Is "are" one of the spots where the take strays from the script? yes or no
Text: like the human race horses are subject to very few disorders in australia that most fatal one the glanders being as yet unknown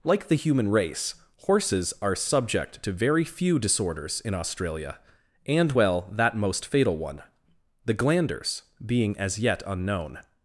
no